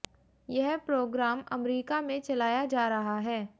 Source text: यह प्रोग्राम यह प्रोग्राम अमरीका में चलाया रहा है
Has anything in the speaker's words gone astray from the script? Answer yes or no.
yes